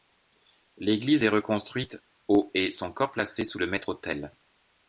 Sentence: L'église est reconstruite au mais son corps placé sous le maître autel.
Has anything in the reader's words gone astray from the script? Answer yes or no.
yes